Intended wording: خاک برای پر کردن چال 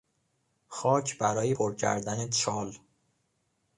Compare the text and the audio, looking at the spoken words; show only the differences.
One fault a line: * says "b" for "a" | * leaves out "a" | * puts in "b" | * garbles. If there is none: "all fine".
all fine